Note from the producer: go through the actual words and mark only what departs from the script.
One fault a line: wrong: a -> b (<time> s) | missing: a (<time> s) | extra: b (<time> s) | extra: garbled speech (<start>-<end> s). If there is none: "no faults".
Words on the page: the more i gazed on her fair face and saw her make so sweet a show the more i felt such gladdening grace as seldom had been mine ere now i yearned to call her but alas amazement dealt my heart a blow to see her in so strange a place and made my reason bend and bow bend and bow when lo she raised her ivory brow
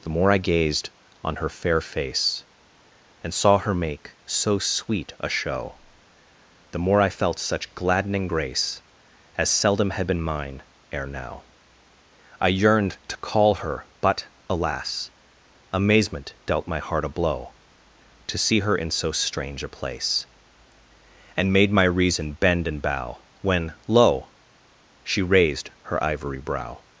missing: bend and bow (23.2 s)